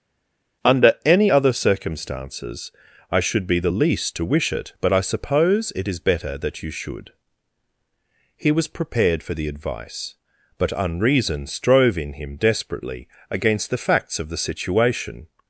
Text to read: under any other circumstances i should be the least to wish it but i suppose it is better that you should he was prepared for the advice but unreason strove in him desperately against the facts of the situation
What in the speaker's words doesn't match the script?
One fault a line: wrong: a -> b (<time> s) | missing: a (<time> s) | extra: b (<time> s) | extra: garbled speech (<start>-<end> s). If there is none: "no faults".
no faults